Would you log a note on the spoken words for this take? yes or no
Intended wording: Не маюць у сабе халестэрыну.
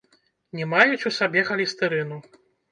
no